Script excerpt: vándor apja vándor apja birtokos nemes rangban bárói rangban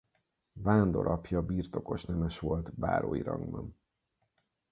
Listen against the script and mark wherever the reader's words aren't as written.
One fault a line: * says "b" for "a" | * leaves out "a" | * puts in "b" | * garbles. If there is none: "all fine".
* leaves out "vándor apja"
* says "volt" for "rangban"